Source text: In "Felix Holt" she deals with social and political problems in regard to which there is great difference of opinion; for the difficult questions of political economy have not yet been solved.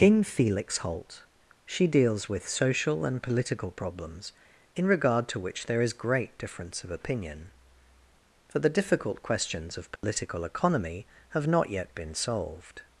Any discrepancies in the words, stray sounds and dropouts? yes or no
yes